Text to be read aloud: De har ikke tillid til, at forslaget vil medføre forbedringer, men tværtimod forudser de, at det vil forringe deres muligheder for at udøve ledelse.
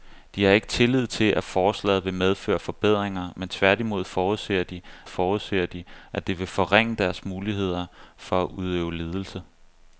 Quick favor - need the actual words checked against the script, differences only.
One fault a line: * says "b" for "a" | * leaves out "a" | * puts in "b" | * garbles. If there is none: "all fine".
* puts in "forudser de"